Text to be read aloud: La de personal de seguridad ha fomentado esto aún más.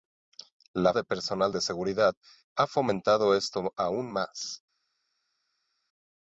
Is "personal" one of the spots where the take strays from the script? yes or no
no